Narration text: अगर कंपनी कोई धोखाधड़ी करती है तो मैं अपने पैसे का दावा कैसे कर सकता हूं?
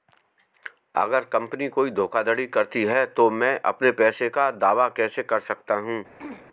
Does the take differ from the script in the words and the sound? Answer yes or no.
yes